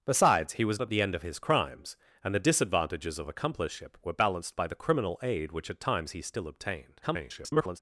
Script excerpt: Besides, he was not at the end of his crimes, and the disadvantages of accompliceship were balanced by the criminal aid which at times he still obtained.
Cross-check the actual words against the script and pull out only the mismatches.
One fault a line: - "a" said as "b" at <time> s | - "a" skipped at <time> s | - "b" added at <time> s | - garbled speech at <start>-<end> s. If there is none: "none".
- "not" skipped at 0.8 s
- garbled speech at 7.0-7.8 s